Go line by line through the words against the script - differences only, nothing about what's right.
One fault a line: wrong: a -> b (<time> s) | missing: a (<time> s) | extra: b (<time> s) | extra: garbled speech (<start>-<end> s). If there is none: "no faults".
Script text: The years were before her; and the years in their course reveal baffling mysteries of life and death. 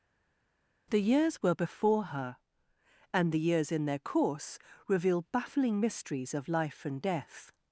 no faults